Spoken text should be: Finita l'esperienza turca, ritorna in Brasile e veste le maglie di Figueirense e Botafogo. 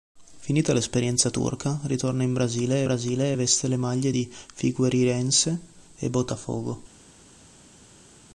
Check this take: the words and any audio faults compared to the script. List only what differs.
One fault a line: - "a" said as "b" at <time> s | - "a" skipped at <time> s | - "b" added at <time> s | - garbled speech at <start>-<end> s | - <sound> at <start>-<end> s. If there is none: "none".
- "Brasile" added at 2.8 s